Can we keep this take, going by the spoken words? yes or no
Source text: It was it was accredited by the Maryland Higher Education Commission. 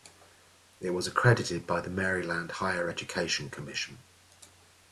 no